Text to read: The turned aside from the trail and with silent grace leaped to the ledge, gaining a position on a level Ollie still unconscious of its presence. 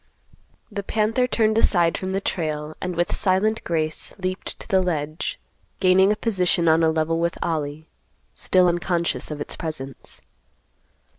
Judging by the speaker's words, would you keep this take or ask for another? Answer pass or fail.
fail